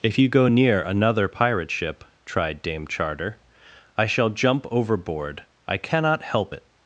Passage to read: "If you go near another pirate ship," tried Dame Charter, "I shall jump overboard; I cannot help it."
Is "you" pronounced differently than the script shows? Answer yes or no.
no